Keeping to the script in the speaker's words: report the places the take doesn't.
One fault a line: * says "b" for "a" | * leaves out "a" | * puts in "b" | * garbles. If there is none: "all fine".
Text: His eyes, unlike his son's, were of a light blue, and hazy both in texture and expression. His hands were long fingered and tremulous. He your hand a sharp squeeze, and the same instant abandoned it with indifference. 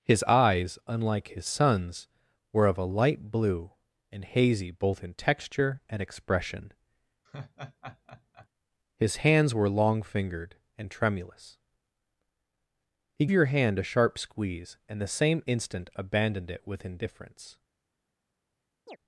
all fine